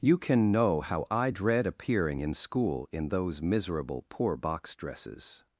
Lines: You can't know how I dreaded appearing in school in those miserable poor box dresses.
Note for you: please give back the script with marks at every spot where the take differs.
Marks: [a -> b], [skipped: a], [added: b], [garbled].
You [can't -> can] know how I [dreaded -> dread] appearing in school in those miserable poor box dresses.